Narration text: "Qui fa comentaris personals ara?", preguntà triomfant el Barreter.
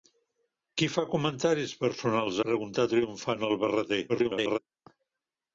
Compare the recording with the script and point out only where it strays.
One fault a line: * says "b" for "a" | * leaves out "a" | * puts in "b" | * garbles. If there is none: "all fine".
* leaves out "ara"
* garbles